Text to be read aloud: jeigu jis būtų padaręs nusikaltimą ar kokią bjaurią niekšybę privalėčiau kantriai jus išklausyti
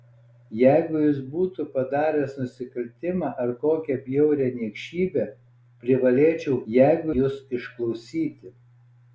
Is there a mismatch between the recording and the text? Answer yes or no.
yes